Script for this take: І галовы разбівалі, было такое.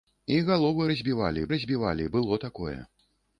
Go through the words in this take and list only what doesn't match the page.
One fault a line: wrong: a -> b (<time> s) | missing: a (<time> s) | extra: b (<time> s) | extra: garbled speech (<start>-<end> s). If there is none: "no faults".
extra: разбівалі (1.6 s)